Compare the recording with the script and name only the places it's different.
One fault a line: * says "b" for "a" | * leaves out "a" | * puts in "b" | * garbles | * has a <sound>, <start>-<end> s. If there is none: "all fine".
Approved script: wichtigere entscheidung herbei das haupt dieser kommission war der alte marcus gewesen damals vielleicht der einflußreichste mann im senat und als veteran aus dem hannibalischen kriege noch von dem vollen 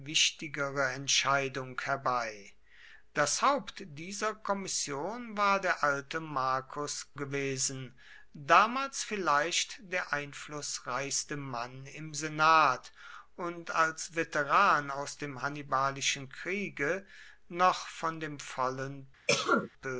* has a cough, 19.3-19.7 s